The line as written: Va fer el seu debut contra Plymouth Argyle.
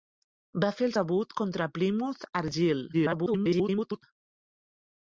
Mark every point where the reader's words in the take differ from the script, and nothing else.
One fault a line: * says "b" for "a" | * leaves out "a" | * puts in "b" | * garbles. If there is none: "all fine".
* leaves out "seu"
* garbles